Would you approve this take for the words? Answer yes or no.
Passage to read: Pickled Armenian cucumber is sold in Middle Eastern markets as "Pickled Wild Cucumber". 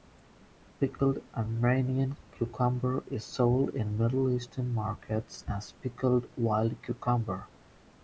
yes